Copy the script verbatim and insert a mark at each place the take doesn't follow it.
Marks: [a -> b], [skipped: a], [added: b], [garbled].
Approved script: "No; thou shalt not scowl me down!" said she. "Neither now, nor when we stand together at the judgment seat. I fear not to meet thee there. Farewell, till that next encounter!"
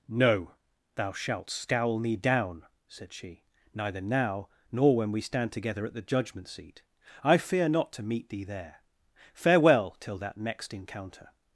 "No; thou shalt [skipped: not] scowl me down!" said she. "Neither now, nor when we stand together at the judgment seat. I fear not to meet thee there. Farewell, till that next encounter!"